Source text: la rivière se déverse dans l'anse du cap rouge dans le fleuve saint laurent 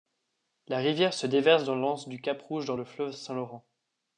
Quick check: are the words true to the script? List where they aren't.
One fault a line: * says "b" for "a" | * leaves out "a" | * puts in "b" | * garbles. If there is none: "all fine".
all fine